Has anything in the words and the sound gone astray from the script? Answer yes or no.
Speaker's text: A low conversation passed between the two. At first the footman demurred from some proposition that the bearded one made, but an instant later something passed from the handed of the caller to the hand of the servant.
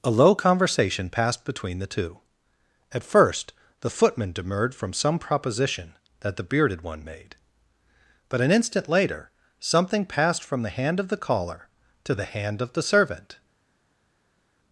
yes